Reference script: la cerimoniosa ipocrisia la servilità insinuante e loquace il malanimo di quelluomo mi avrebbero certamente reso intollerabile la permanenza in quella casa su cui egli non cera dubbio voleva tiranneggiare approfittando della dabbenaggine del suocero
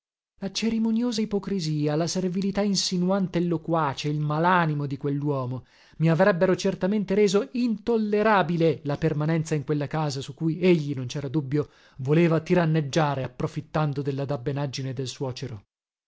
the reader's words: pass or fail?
pass